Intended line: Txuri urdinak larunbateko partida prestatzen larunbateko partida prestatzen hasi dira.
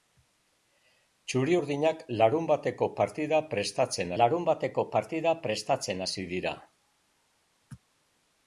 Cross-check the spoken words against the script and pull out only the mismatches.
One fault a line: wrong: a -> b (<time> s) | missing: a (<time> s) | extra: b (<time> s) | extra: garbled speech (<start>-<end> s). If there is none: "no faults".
no faults